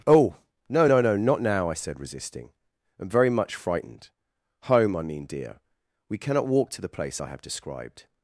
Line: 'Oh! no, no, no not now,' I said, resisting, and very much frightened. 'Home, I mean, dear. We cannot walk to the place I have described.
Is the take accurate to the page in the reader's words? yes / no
yes